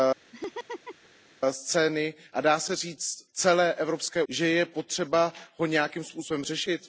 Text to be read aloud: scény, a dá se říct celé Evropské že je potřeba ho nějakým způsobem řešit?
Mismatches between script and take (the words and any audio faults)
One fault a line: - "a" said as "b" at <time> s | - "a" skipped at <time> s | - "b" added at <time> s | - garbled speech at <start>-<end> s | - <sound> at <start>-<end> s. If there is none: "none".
- laugh at 0.3-1.1 s